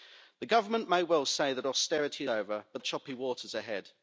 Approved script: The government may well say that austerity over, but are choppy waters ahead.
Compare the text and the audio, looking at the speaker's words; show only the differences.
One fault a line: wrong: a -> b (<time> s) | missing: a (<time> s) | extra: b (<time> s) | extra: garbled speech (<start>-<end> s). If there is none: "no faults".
no faults